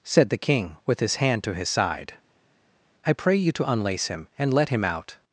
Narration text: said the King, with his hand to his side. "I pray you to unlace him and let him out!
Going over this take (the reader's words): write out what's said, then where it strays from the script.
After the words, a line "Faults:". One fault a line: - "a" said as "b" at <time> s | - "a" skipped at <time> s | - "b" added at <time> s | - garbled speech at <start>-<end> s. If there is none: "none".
said the King, with his hand to his side. "I pray you to unlace him and let him out!
Faults:
none